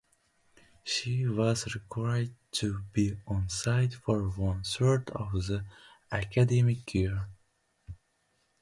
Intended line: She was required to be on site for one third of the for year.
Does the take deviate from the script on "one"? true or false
false